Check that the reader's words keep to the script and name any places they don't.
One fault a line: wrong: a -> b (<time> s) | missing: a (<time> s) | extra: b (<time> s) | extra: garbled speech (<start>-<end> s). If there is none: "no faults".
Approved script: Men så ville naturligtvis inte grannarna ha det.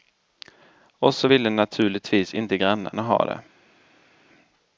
wrong: Men -> Och (1.0 s)